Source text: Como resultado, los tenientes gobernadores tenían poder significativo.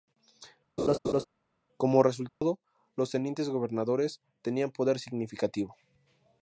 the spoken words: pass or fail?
pass